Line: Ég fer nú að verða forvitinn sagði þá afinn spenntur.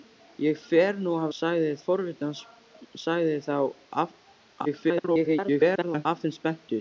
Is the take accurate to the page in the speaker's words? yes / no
no